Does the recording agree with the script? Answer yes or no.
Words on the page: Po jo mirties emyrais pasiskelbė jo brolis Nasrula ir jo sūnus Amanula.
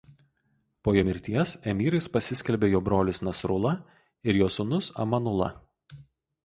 yes